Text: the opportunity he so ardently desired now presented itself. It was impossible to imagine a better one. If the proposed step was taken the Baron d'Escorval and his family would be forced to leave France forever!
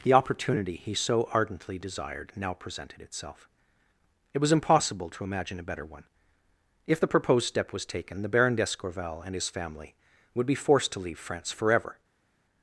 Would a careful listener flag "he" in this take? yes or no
no